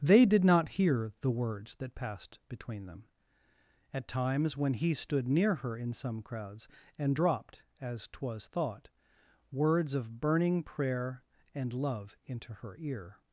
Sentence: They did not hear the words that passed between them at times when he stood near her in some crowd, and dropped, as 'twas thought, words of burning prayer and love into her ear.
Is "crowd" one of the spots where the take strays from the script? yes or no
yes